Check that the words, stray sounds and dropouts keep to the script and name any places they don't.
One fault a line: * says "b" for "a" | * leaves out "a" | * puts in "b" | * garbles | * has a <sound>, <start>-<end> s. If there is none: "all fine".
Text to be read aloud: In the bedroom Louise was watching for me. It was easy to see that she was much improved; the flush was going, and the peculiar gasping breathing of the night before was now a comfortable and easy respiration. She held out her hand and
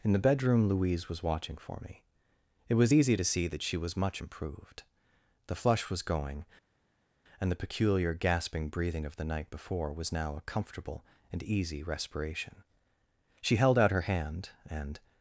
all fine